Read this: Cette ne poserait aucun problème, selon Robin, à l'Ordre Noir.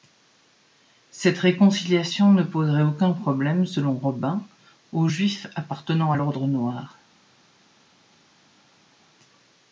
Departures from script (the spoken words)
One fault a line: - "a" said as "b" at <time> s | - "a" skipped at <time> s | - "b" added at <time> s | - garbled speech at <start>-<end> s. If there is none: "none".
- "réconciliation" added at 1.4 s
- "aux juifs appartenant" added at 4.9 s